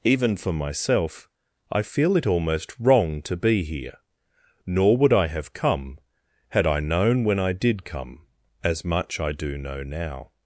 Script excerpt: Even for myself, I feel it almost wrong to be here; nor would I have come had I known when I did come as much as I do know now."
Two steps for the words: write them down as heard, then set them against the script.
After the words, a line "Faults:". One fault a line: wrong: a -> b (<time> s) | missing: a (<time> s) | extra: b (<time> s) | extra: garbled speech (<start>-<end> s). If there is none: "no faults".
Even for myself, I feel it almost wrong to be here; nor would I have come had I known when I did come as much I do know now."
Faults:
missing: as (9.2 s)